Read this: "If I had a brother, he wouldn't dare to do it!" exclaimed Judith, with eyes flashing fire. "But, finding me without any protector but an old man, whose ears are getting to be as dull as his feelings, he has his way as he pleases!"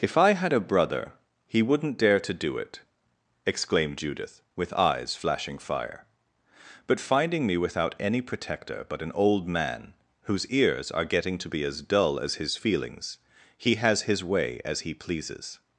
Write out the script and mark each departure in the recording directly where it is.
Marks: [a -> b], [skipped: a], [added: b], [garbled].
"If I had a brother, he wouldn't dare to do it!" exclaimed Judith, with eyes flashing fire. "But, finding me without any protector but an old man, whose ears are getting to be as dull as his feelings, he has his way as he pleases!"